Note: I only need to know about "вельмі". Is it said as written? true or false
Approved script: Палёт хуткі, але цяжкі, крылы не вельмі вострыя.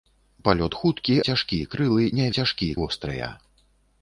false